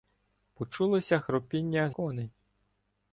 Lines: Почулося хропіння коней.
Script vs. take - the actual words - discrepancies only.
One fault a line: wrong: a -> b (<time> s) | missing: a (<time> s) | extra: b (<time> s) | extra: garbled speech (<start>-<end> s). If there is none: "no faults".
no faults